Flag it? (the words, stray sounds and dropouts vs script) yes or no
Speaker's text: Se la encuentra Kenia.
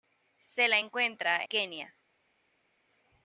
no